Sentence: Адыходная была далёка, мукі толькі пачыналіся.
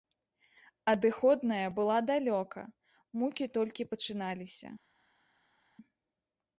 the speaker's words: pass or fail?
pass